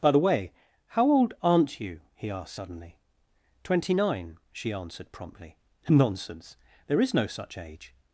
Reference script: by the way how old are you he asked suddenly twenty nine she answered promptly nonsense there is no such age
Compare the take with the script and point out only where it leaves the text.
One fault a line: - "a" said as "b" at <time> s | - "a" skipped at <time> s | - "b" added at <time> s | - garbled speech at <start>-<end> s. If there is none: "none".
- "are" said as "aren't" at 1.4 s